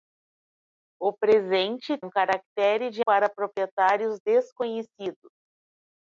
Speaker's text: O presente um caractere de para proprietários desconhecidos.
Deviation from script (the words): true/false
false